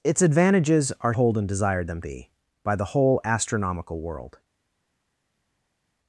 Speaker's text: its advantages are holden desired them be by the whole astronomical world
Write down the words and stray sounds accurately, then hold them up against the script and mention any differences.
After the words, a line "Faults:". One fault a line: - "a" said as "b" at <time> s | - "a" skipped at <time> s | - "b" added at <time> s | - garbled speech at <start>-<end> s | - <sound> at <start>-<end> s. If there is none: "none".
its advantages are holden desired them be by the whole astronomical world
Faults:
none